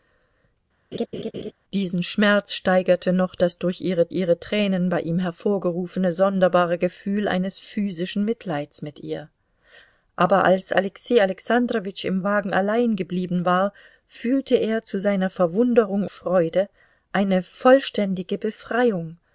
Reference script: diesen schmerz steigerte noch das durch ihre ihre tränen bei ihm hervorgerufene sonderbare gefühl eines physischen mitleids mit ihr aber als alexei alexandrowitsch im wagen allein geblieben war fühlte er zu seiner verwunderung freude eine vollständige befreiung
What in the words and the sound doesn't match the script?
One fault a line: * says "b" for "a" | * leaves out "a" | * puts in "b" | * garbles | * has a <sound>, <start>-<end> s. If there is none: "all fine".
* has a laugh, 0.9-1.5 s